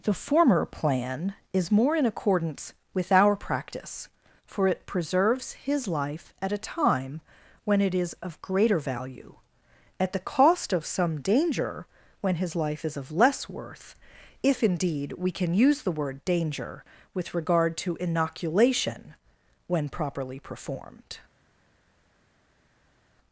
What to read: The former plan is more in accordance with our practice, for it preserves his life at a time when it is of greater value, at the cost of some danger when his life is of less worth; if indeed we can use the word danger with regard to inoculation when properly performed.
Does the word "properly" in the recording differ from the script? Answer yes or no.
no